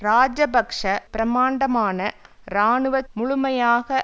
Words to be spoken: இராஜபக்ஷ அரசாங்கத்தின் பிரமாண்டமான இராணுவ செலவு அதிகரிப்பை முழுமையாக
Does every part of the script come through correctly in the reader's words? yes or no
no